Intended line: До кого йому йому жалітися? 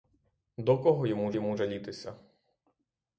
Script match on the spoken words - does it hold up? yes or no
yes